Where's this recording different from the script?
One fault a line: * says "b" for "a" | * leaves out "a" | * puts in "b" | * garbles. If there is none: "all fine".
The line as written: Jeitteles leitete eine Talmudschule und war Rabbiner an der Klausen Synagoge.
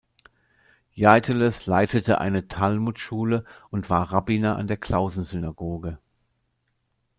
all fine